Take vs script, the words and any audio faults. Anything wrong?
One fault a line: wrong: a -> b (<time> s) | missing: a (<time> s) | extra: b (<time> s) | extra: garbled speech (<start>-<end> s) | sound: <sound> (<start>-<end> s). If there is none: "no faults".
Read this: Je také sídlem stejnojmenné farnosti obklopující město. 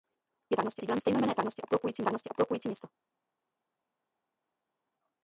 wrong: také -> farnosti (0.5 s)
extra: farnosti obklopující (2.0 s)